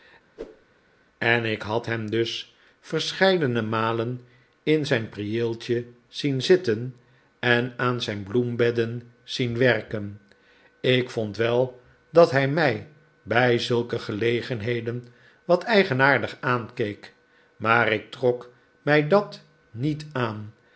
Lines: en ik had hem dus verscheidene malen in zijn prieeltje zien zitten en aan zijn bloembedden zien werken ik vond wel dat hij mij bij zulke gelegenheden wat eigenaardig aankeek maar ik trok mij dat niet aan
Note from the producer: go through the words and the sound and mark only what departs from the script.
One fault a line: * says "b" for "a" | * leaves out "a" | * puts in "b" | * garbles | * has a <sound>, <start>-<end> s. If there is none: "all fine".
* has a whoosh, 0.4-0.7 s